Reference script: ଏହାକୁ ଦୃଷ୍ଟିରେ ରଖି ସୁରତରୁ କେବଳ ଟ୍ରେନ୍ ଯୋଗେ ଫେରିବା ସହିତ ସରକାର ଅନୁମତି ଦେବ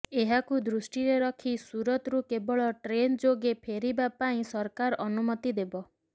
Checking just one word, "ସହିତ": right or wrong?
wrong